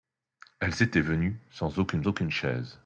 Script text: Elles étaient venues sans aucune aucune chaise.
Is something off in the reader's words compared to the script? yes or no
no